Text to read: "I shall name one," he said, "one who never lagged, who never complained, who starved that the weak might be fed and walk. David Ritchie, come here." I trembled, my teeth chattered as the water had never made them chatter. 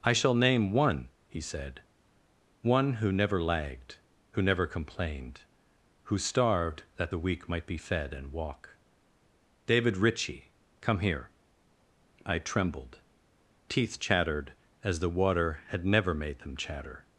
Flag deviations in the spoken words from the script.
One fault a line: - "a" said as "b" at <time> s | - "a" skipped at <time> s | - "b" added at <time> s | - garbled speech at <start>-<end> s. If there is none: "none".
- "my" skipped at 13.0 s